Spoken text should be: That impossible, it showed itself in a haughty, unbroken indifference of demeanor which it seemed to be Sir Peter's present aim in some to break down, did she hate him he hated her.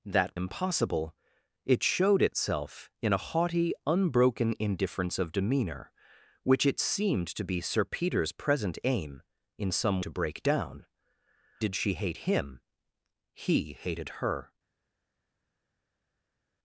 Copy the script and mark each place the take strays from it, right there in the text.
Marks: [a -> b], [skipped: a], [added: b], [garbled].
That impossible, it showed itself in a haughty, unbroken indifference of demeanor which it seemed to be Sir Peter's present aim in some to break down, did she hate him he hated her.